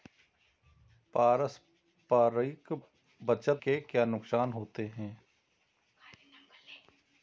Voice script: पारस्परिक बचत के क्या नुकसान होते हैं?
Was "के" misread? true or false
false